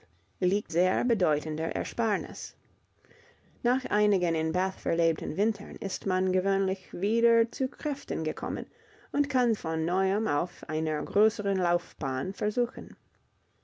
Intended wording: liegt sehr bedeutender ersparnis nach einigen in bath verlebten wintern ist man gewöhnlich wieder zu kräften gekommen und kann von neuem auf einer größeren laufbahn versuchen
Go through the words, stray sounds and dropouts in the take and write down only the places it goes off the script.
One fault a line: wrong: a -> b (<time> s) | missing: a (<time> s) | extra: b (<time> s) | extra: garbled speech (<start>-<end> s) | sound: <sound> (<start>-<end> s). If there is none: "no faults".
no faults